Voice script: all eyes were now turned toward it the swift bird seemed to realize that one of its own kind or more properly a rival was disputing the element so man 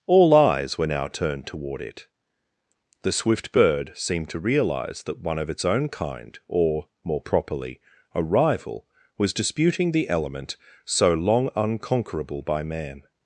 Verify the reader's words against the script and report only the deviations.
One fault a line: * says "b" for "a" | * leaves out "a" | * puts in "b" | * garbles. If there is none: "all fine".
* puts in "long unconquerable by"